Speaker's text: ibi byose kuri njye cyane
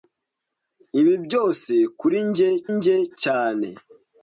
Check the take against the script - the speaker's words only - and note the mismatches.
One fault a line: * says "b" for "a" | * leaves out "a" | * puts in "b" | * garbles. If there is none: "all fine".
* puts in "njye"